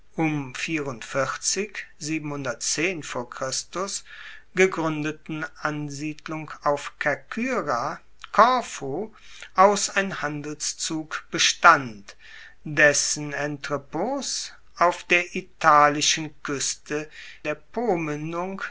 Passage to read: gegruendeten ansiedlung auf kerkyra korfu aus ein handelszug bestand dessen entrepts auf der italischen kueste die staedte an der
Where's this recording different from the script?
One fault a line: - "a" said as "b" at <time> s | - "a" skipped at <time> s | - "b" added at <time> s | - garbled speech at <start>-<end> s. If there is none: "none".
- "die staedte an" skipped at 17.1 s